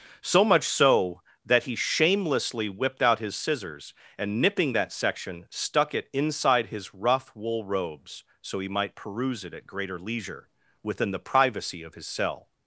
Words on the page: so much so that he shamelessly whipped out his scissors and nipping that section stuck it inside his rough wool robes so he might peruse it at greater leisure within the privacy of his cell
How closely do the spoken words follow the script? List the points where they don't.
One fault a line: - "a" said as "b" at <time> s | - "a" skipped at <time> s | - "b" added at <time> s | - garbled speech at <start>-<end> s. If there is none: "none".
none